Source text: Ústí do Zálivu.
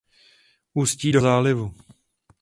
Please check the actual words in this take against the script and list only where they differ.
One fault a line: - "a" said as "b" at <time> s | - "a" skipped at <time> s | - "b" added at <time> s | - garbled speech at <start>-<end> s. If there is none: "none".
none